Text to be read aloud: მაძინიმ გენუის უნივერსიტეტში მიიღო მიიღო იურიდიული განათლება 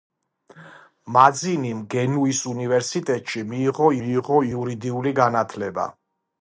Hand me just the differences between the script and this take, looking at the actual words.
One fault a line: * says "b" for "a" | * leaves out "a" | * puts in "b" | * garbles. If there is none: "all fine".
all fine